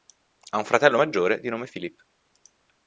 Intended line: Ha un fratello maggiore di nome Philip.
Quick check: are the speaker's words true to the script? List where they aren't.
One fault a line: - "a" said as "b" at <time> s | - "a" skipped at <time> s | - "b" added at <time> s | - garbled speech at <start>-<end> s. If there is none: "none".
none